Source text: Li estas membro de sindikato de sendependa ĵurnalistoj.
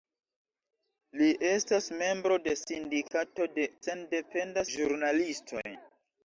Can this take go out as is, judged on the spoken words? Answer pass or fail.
pass